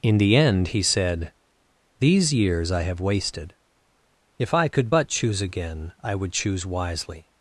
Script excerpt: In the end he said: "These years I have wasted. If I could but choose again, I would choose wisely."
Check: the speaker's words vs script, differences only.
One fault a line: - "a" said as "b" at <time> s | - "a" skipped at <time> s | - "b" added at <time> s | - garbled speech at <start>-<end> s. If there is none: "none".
none